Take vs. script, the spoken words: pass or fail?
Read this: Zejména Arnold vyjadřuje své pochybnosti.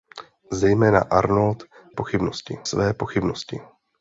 fail